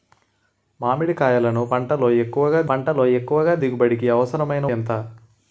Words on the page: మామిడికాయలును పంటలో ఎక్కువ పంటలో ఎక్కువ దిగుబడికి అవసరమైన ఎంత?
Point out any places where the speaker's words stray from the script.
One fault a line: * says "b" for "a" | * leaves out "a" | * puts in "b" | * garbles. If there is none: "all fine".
all fine